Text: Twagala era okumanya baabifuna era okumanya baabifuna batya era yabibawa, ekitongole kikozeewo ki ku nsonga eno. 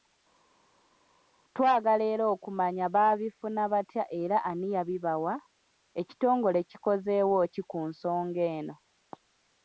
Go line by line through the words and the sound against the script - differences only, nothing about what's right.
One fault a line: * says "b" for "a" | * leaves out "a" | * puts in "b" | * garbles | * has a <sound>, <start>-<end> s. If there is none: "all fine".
* leaves out "era okumanya baabifuna"
* puts in "ani"